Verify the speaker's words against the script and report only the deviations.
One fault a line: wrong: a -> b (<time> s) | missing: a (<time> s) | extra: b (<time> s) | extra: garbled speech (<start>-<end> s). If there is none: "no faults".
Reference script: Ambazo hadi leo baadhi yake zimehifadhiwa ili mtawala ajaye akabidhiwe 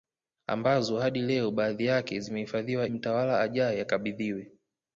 missing: ili (2.9 s)